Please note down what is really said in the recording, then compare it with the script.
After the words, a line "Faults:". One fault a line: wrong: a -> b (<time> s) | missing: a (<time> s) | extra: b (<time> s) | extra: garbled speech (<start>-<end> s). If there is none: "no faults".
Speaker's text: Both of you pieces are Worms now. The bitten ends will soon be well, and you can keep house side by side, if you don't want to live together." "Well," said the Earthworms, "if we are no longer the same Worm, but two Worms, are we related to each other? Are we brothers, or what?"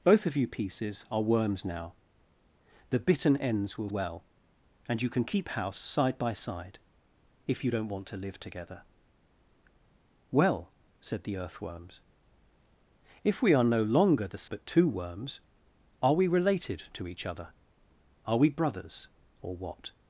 Both of you pieces are Worms now. The bitten ends will well, and you can keep house side by side, if you don't want to live together." "Well," said the Earthworms, "if we are no longer the but two Worms, are we related to each other? Are we brothers, or what?"
Faults:
missing: soon be (3.9 s)
missing: same Worm (14.4 s)